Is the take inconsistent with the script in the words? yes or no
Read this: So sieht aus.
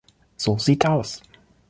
no